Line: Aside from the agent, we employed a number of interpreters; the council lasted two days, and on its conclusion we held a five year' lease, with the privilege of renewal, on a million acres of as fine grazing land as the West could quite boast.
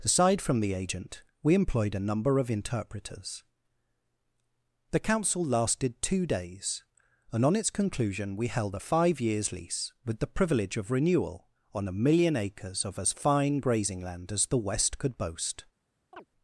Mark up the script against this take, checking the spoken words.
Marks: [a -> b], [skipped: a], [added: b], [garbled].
Aside from the agent, we employed a number of interpreters; the council lasted two days, and on its conclusion we held a five [year' -> years] lease, with the privilege of renewal, on a million acres of as fine grazing land as the West could [skipped: quite] boast.